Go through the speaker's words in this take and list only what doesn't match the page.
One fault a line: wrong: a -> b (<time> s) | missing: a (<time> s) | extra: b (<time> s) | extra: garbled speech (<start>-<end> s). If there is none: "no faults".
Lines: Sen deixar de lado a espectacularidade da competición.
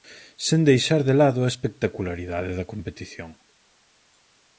no faults